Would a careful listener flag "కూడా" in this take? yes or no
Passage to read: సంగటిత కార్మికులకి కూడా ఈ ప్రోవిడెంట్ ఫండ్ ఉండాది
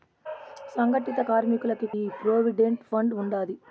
yes